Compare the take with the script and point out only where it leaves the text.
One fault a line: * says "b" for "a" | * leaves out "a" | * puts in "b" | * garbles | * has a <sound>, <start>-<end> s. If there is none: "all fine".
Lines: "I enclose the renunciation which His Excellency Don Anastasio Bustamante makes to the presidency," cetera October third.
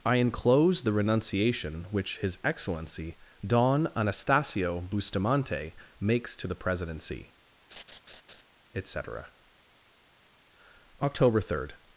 * has a laugh, 7.7-8.4 s
* puts in "et"